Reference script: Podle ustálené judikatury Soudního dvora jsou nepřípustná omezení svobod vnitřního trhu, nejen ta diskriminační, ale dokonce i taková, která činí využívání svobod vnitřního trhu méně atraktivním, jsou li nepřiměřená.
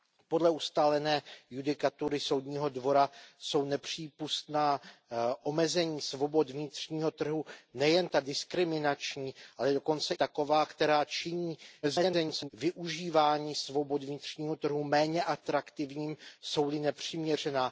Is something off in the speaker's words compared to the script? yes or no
yes